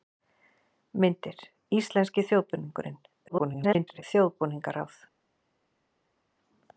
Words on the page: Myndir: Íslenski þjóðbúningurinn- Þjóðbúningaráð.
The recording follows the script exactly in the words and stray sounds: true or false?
false